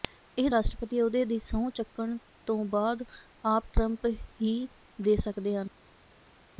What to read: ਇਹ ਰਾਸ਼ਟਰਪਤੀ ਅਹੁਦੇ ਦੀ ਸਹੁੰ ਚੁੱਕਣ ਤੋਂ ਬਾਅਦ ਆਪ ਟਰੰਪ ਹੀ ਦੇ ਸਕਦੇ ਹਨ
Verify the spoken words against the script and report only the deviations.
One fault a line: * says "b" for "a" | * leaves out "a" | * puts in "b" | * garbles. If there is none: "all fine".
all fine